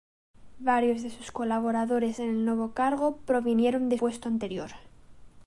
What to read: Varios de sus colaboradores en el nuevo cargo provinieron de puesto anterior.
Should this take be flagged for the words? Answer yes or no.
no